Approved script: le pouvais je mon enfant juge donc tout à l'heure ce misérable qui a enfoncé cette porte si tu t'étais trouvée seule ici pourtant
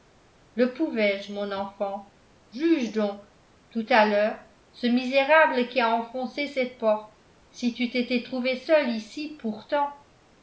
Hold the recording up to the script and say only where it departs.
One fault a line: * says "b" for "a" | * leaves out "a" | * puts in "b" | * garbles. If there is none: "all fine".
all fine